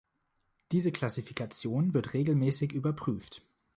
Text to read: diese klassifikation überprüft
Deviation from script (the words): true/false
true